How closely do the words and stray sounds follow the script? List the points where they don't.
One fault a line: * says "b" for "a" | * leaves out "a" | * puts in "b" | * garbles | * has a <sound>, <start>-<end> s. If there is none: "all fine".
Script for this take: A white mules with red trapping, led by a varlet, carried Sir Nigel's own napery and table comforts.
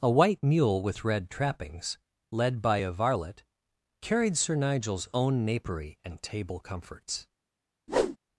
* says "mule" for "mules"
* says "trappings" for "trapping"
* has a whoosh, 7.9-8.2 s